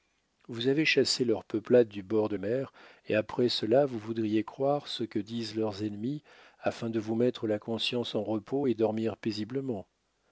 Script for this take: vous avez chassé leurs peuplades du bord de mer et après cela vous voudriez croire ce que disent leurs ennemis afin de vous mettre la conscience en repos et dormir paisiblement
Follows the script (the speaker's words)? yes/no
yes